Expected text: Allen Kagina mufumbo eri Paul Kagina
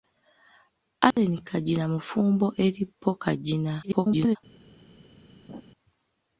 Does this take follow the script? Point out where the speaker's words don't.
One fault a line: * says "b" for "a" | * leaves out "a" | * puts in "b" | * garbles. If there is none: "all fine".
* garbles